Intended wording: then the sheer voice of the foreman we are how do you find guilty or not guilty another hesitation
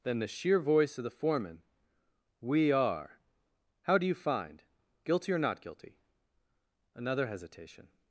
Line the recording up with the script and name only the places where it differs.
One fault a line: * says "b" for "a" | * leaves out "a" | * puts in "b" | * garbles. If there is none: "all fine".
all fine